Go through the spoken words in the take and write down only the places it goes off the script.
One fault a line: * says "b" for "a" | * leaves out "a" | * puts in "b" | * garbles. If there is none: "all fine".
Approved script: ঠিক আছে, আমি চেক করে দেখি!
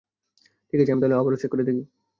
* puts in "তাহলে আবারও"